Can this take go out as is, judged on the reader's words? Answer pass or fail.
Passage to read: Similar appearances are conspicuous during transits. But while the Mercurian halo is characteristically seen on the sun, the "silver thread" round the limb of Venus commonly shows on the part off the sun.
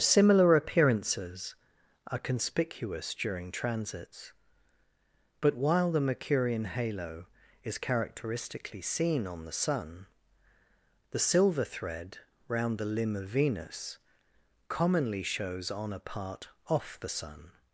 fail